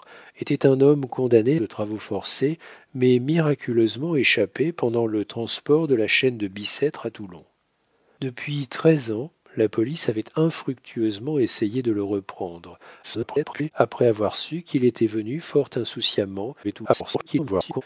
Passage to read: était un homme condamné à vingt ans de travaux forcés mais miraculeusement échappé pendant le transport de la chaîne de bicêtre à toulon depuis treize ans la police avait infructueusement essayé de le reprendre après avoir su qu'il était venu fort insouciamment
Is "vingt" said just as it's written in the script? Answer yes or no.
no